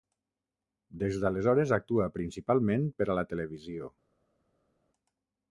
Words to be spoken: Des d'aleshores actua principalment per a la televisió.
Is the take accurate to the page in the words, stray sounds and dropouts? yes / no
yes